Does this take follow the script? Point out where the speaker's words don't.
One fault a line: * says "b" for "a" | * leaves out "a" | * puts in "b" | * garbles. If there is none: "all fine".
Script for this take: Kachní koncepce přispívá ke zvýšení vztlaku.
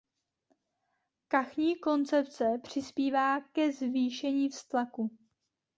all fine